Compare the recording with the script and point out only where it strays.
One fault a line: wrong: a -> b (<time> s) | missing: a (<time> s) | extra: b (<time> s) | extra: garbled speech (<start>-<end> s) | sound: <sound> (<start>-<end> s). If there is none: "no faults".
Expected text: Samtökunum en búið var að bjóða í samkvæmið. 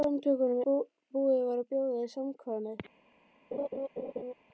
missing: en (0.6 s)
sound: laugh (3.5-4.3 s)